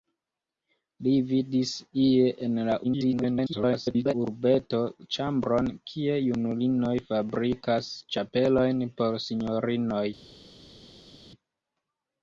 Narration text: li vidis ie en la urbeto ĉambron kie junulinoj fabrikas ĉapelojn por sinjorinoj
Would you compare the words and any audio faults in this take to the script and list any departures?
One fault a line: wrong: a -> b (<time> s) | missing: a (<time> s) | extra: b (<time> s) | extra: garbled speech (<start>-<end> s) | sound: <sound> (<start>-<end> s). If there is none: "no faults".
extra: garbled speech (2.8-4.1 s)